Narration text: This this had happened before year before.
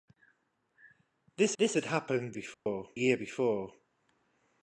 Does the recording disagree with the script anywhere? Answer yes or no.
no